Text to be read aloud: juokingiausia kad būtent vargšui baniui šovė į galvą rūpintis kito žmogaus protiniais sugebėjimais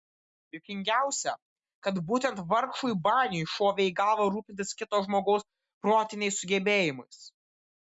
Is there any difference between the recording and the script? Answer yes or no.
no